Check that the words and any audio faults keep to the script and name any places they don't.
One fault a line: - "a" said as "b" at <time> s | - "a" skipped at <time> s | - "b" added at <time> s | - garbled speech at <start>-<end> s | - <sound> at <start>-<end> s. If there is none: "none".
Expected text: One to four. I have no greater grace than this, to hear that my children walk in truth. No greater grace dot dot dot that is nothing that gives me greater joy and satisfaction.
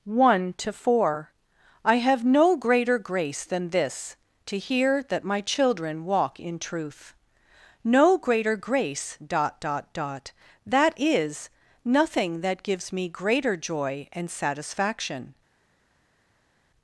none